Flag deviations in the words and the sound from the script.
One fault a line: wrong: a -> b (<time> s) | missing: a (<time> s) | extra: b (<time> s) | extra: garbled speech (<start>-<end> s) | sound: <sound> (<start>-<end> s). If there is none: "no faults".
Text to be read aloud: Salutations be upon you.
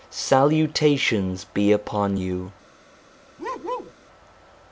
sound: bark (3.4-3.9 s)